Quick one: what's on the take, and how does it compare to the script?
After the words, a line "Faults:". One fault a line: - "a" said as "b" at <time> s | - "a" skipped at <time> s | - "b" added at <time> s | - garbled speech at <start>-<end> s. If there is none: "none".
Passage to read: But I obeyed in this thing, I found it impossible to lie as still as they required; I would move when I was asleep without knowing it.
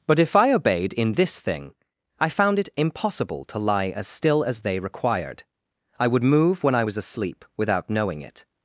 But if I obeyed in this thing, I found it impossible to lie as still as they required; I would move when I was asleep without knowing it.
Faults:
- "if" added at 0.2 s